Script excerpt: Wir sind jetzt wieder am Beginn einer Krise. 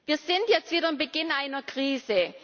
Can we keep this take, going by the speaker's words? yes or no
yes